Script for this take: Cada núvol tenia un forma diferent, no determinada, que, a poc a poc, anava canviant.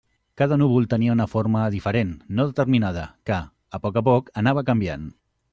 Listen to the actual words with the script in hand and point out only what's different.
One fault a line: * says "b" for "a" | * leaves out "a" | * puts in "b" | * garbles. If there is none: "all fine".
* says "una" for "un"